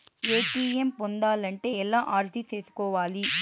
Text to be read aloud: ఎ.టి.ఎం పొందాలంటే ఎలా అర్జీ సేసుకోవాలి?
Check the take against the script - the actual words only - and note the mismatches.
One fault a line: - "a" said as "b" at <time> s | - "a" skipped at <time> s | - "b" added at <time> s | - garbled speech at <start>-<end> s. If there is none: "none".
none